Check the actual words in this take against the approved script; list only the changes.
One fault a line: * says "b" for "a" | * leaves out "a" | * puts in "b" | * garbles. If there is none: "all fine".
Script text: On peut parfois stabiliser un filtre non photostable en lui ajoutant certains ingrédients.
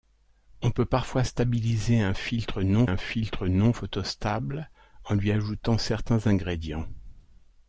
* puts in "un filtre non"